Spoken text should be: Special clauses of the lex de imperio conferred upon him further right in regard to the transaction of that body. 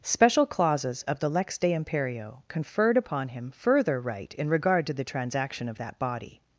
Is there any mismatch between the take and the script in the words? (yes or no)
no